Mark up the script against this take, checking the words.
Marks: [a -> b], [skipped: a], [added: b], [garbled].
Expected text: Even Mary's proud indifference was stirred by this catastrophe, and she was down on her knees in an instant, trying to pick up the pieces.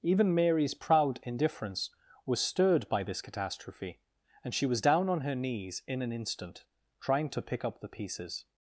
Even Mary's proud indifference was stirred by this catastrophe, and she was down on her knees in an instant, trying to pick up the pieces.